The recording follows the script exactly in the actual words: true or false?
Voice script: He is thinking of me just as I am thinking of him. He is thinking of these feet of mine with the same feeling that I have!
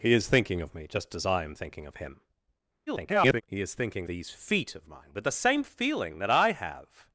false